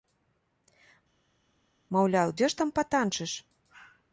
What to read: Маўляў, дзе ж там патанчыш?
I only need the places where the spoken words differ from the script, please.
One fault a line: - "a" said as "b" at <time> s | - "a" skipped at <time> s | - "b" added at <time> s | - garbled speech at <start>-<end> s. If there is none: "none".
none